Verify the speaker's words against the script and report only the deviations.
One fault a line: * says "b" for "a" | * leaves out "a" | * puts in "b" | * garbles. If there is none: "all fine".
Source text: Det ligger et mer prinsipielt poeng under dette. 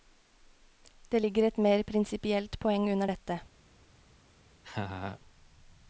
all fine